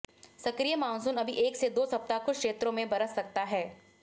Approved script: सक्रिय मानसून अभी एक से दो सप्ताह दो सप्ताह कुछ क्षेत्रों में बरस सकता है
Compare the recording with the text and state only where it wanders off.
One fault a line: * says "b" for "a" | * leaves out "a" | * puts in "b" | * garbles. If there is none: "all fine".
* leaves out "दो सप्ताह"